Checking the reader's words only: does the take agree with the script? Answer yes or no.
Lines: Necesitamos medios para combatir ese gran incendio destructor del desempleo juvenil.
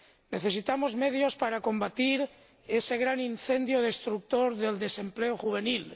yes